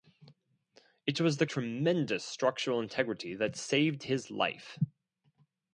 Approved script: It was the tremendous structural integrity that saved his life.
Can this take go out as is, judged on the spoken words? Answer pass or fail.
pass